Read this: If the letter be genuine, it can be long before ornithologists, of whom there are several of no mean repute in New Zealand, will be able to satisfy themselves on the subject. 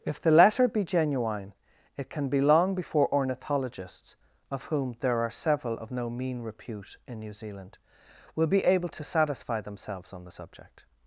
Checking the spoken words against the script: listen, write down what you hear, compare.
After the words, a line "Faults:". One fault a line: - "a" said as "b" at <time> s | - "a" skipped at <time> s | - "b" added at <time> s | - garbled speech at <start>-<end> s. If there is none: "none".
If the letter be genuine, it can be long before ornithologists, of whom there are several of no mean repute in New Zealand, will be able to satisfy themselves on the subject.
Faults:
none